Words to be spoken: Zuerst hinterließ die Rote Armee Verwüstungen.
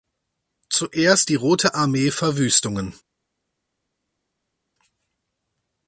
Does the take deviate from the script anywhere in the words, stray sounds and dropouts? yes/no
yes